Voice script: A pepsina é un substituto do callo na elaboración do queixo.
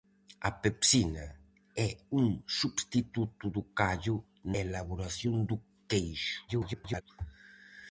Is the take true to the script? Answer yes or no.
no